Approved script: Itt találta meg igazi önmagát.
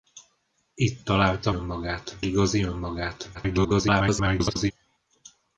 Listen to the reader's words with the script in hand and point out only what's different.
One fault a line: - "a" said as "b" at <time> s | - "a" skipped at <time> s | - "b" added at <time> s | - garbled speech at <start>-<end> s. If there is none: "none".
- "meg" said as "önmagát" at 1.5 s
- garbled speech at 3.3-4.7 s